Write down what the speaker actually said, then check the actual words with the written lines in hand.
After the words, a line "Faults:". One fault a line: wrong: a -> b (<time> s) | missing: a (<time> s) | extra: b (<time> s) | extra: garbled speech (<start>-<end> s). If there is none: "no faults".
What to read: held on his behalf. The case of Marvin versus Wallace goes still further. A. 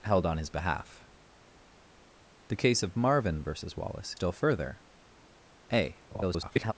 held on his behalf. The case of Marvin versus Wallace still further. A. [garbled]
Faults:
missing: goes (4.1 s)
extra: garbled speech (6.1-6.7 s)